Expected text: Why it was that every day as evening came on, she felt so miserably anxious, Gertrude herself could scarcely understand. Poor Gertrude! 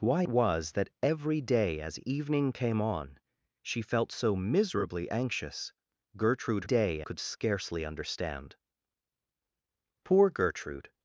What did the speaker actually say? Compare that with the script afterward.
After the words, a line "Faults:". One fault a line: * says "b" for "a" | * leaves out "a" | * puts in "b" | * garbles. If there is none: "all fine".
Why was that every day as evening came on, she felt so miserably anxious, Gertrude day could scarcely understand. Poor Gertrude!
Faults:
* leaves out "it"
* says "day" for "herself"